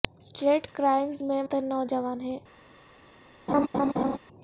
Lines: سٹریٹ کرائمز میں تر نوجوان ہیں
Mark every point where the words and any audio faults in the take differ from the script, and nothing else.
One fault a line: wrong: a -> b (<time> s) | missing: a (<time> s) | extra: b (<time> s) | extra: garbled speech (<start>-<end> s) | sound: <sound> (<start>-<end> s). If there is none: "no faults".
sound: laugh (3.5-4.2 s)